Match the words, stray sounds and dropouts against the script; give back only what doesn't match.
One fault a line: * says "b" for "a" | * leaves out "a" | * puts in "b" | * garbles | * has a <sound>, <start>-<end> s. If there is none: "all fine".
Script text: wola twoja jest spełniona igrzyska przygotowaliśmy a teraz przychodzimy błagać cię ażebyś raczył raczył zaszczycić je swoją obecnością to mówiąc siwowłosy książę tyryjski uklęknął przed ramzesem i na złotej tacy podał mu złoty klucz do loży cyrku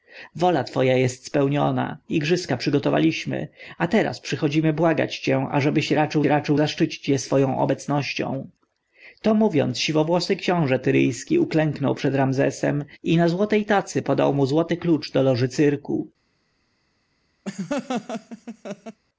* has a laugh, 17.5-19.0 s